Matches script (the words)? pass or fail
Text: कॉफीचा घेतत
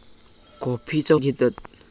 pass